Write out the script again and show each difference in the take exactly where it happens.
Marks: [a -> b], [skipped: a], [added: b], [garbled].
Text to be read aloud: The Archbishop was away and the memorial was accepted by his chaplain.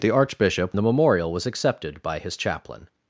The Archbishop [skipped: was away and] the memorial was accepted by his chaplain.